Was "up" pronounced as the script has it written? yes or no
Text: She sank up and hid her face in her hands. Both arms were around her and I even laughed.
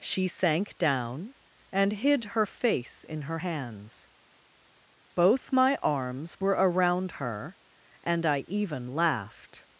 no